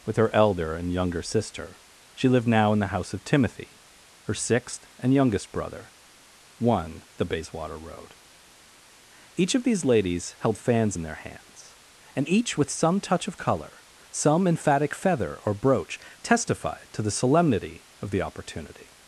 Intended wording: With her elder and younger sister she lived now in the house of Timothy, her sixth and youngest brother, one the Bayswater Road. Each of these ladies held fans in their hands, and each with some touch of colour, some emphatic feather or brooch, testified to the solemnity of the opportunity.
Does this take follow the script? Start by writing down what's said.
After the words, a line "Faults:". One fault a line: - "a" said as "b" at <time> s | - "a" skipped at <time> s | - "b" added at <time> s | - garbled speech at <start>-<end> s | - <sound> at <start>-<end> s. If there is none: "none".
With her elder and younger sister she lived now in the house of Timothy, her sixth and youngest brother, one the Bayswater Road. Each of these ladies held fans in their hands, and each with some touch of colour, some emphatic feather or brooch, testified to the solemnity of the opportunity.
Faults:
none